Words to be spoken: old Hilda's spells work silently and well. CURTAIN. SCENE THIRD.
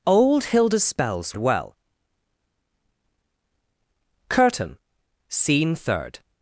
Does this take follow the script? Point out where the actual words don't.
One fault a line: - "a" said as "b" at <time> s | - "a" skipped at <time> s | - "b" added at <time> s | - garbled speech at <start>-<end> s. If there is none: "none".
- "work silently and" skipped at 1.4 s